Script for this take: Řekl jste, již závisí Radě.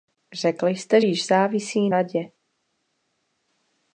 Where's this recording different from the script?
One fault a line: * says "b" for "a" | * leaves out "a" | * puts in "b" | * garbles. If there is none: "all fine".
all fine